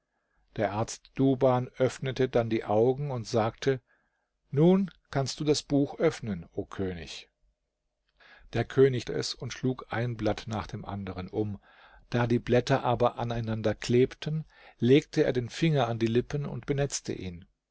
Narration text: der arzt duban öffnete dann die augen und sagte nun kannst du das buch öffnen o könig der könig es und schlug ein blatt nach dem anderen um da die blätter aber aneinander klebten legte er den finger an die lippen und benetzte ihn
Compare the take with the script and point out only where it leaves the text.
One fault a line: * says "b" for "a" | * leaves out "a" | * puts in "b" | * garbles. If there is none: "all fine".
all fine